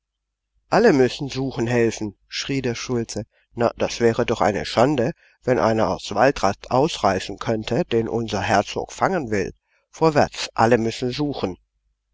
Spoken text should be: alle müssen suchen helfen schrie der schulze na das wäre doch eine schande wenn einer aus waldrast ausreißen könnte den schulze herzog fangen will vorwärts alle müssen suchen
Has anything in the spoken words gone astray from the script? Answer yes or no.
yes